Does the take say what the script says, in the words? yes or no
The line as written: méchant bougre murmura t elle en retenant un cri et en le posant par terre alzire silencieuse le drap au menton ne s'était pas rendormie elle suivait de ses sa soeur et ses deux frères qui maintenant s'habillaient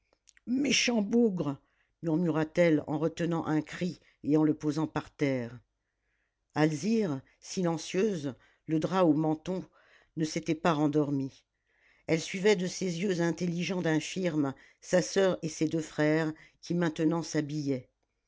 no